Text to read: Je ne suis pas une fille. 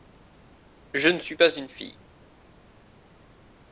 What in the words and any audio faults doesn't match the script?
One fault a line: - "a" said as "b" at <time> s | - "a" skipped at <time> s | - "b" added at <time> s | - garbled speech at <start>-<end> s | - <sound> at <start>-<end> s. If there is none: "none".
none